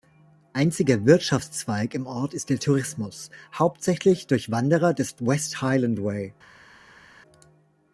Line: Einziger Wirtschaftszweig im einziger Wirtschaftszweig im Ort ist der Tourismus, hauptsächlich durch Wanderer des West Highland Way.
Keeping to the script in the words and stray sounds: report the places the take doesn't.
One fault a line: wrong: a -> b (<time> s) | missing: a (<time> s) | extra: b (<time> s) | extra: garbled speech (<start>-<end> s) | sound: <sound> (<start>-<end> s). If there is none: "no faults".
missing: einziger Wirtschaftszweig im (2.1 s)